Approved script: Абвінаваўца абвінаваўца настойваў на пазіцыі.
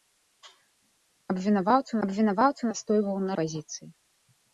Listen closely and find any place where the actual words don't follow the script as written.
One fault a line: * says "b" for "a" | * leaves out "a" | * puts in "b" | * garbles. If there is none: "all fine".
all fine